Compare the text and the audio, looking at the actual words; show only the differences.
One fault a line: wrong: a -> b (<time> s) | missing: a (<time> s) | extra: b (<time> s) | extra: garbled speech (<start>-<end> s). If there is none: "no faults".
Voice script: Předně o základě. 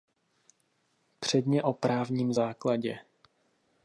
extra: právním (1.7 s)